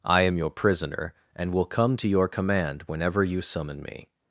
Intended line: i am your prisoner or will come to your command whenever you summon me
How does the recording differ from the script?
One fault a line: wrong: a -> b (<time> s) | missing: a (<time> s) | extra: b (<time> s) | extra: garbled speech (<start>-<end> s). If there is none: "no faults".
wrong: or -> and (1.4 s)